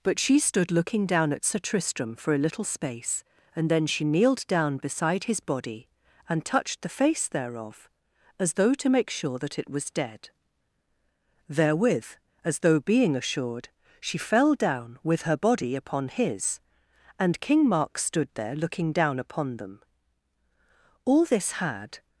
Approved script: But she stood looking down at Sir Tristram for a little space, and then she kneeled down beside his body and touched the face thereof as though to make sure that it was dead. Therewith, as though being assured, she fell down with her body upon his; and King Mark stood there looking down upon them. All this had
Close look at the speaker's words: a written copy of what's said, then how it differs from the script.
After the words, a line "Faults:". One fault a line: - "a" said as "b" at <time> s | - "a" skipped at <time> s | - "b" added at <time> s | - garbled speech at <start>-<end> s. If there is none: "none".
But she stood looking down at Sir Tristram for a little space, and then she kneeled down beside his body and touched the face thereof as though to make sure that it was dead. Therewith, as though being assured, she fell down with her body upon his; and King Mark stood there looking down upon them. All this had
Faults:
none